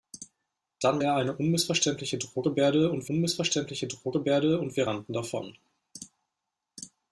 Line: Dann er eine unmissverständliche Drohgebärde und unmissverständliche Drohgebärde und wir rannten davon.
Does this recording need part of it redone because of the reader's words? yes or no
no